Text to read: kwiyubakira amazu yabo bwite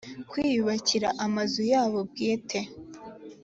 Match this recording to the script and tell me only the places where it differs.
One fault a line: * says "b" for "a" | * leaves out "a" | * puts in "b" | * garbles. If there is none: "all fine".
all fine